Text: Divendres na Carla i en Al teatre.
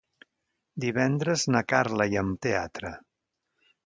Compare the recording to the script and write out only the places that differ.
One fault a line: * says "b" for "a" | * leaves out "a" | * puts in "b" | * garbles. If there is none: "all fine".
all fine